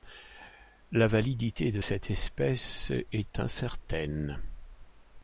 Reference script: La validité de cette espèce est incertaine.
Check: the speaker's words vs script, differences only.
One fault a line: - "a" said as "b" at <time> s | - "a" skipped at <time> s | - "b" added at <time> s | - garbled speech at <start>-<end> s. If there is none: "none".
none